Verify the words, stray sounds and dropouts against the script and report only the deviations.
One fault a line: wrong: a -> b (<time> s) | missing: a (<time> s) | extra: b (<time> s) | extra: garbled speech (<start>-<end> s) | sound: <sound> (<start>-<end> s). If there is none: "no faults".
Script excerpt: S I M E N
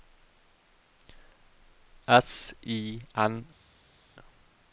missing: M E (3.0 s)